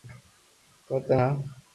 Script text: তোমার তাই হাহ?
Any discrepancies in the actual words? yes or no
no